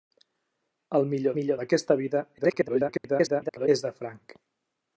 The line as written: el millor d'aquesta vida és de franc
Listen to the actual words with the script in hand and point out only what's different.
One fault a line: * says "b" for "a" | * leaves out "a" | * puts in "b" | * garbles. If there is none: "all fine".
* puts in "millor"
* garbles